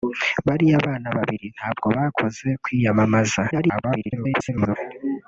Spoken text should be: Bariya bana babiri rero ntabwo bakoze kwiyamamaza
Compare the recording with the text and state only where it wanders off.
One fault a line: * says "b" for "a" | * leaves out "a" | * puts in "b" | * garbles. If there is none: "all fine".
* leaves out "rero"
* garbles